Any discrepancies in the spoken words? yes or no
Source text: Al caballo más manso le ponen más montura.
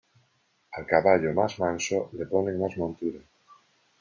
no